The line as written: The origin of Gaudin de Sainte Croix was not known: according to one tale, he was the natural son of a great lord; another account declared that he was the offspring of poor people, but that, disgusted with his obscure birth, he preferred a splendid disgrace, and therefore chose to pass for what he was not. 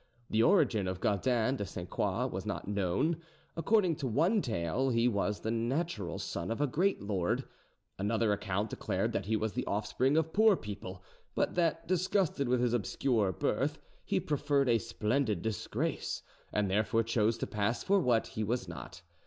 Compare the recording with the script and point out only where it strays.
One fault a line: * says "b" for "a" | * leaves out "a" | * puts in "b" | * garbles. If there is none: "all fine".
all fine